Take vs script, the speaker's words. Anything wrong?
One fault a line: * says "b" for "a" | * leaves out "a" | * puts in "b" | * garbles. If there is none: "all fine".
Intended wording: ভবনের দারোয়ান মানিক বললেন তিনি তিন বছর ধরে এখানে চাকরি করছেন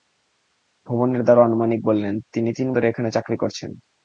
* leaves out "বছর"